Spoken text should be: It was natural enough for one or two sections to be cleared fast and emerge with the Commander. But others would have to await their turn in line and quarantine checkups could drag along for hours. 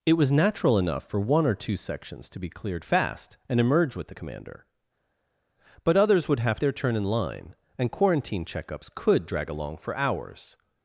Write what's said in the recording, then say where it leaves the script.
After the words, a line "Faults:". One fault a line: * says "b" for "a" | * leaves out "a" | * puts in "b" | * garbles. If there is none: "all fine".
It was natural enough for one or two sections to be cleared fast and emerge with the Commander. But others would have their turn in line and quarantine checkups could drag along for hours.
Faults:
* leaves out "to await"